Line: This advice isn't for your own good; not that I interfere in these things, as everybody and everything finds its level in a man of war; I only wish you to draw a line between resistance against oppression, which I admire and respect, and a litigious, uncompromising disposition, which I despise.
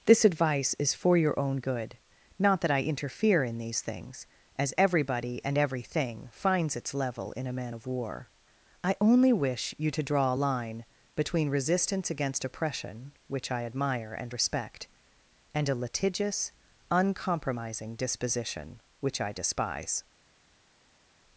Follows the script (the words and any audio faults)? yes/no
no